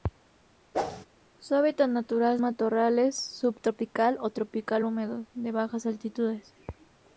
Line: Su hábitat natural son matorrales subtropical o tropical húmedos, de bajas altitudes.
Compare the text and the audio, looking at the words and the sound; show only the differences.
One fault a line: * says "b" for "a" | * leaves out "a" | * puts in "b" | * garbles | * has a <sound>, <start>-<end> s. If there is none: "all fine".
* has a whoosh, 0.7-1.1 s
* leaves out "son"